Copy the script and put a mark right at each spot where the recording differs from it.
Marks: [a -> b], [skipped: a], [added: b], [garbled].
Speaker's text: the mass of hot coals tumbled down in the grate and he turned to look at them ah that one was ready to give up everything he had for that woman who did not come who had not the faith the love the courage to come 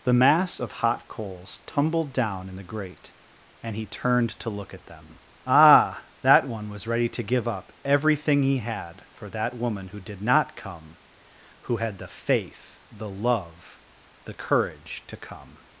the mass of hot coals tumbled down in the grate and he turned to look at them ah that one was ready to give up everything he had for that woman who did not come who had [skipped: not] the faith the love the courage to come